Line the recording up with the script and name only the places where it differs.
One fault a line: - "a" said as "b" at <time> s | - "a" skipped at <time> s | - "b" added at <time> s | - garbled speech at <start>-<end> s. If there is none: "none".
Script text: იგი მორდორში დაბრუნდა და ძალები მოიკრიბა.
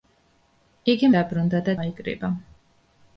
- "მორდორში" skipped at 1.1 s
- "ძალები" skipped at 1.8 s